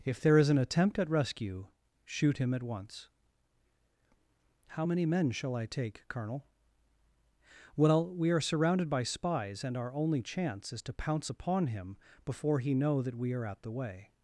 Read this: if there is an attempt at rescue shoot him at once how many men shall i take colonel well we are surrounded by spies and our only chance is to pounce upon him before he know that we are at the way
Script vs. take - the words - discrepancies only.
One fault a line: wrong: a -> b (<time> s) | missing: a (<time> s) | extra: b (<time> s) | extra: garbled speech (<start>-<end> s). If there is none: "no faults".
no faults